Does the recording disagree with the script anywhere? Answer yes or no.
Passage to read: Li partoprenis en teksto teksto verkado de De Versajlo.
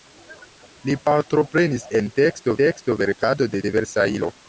no